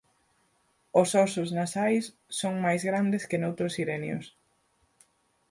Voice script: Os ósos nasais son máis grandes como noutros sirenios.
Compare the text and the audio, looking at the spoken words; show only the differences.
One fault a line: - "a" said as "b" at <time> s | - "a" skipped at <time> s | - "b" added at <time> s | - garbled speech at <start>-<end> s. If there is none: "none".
- "como" said as "que" at 3.3 s